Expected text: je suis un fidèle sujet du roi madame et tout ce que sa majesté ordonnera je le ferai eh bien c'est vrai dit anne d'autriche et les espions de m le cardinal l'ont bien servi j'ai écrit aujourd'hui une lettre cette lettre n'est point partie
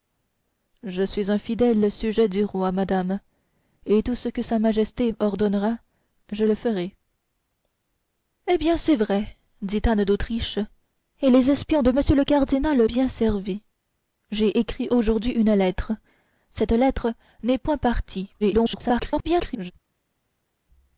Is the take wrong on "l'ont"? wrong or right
wrong